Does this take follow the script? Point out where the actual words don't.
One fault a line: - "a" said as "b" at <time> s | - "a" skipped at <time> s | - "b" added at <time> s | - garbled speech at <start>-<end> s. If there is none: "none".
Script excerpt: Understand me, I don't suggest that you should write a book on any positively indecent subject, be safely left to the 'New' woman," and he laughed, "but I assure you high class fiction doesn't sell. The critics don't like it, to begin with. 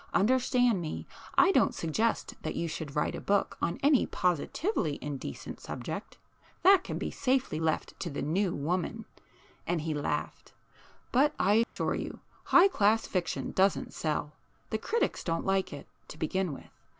- "that can" added at 6.6 s